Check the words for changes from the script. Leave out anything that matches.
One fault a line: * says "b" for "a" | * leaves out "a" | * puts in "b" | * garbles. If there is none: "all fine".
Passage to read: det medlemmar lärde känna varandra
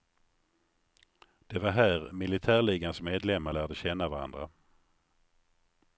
* puts in "var här militärligans"